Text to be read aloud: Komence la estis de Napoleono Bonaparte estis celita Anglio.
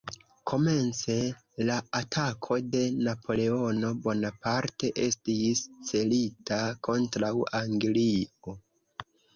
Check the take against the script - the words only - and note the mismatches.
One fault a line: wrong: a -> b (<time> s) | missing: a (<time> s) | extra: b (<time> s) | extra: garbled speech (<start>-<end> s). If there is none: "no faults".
wrong: estis -> atako (2.0 s)
extra: kontraŭ (6.9 s)